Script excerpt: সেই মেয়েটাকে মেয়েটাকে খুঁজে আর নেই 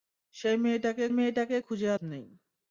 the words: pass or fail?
pass